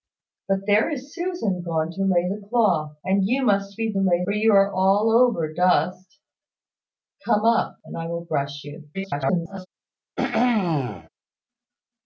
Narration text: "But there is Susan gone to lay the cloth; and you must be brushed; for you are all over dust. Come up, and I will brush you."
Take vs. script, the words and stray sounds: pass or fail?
fail